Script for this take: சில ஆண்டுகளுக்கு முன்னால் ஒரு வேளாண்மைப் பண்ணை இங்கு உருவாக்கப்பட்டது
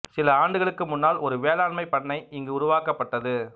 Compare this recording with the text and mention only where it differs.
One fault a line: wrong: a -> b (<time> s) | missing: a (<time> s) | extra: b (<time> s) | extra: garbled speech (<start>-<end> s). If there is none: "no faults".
no faults